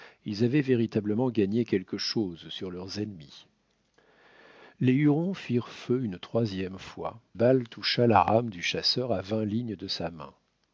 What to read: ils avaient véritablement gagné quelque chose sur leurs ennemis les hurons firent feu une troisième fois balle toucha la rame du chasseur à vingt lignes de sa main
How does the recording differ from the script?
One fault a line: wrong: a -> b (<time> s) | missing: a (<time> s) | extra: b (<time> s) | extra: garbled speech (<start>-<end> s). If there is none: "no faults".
no faults